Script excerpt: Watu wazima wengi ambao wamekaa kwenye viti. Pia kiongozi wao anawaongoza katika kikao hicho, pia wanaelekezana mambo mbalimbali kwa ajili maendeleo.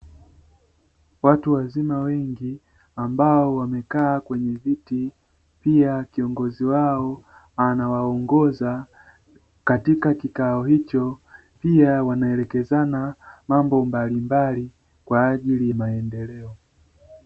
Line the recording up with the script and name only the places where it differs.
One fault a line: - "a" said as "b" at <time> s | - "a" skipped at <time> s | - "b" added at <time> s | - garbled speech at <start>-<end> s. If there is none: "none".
none